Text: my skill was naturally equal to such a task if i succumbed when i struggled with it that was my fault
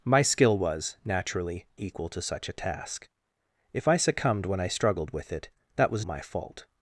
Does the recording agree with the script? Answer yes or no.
yes